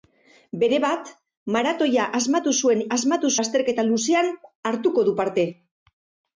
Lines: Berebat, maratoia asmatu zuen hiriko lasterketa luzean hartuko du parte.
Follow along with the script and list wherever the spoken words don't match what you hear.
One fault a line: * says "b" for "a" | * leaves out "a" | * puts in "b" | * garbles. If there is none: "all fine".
* says "asmatu" for "hiriko"